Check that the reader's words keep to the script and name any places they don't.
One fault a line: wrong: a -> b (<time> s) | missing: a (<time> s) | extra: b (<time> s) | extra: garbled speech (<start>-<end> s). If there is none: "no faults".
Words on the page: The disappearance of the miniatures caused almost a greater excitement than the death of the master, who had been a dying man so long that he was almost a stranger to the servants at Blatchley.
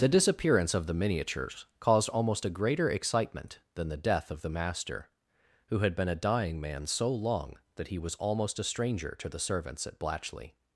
no faults